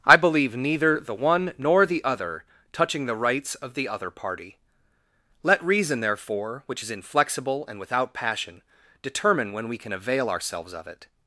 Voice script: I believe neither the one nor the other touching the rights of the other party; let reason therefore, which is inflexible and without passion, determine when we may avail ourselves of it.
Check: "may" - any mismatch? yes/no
yes